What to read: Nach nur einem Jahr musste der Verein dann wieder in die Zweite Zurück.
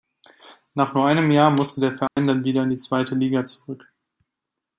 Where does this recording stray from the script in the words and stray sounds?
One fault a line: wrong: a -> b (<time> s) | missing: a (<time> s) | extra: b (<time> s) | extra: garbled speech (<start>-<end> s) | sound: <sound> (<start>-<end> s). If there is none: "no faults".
sound: dropout (2.1-2.2 s)
extra: Liga (3.1 s)